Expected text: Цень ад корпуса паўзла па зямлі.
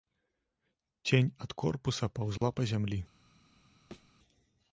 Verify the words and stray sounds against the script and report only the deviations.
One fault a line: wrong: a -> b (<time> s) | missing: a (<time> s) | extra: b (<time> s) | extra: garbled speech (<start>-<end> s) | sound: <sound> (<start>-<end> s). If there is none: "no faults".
sound: dropout (2.4-2.4 s)
sound: thud (3.9-4.1 s)